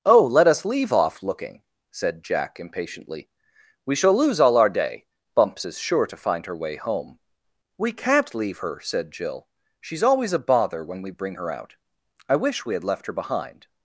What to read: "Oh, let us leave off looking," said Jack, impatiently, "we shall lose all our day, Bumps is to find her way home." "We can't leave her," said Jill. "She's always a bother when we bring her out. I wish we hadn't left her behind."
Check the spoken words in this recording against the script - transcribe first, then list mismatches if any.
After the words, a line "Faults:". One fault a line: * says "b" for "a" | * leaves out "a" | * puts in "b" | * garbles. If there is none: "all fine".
"Oh, let us leave off looking," said Jack, impatiently, "we shall lose all our day, Bumps is sure to find her way home." "We can't leave her," said Jill. "She's always a bother when we bring her out. I wish we had left her behind."
Faults:
* puts in "sure"
* says "had" for "hadn't"